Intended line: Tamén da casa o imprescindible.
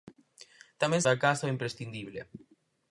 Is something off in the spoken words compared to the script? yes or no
no